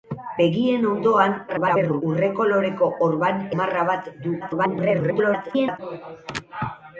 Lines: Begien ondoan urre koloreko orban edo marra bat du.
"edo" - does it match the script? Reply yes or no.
no